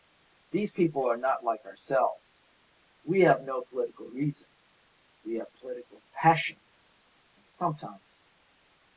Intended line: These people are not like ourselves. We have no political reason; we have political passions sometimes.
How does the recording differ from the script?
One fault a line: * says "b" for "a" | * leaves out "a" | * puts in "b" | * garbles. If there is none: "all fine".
all fine